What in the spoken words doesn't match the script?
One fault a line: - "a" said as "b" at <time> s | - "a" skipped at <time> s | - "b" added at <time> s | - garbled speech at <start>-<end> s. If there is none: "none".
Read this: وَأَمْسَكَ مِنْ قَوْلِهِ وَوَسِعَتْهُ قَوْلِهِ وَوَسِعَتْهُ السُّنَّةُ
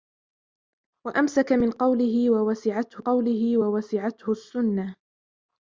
none